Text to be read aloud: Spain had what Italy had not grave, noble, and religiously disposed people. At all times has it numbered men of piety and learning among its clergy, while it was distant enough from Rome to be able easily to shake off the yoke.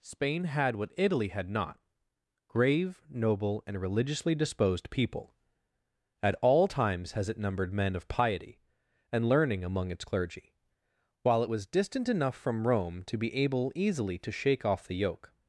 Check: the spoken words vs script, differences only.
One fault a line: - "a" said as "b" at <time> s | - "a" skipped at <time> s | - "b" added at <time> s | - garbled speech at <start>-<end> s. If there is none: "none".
none